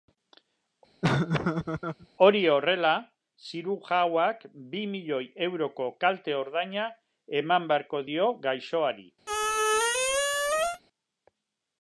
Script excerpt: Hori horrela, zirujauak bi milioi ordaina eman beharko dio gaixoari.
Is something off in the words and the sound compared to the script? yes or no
yes